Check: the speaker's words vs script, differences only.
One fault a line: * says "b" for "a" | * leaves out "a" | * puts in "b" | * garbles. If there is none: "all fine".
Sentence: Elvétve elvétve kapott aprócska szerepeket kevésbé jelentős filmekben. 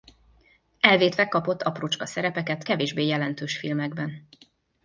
* leaves out "elvétve"